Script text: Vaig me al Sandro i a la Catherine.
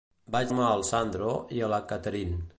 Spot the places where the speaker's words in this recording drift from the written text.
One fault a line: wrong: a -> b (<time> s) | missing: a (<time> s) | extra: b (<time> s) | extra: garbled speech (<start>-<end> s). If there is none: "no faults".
no faults